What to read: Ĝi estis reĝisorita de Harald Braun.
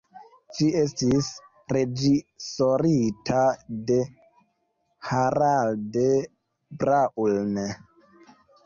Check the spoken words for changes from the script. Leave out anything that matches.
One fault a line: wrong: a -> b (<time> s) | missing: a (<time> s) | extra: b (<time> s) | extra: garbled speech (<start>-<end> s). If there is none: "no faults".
no faults